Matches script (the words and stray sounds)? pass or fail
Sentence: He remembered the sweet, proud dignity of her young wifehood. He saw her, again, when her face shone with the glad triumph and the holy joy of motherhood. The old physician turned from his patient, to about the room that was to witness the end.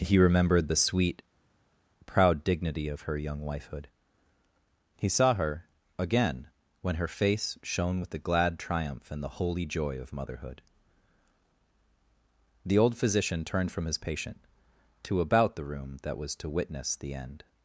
pass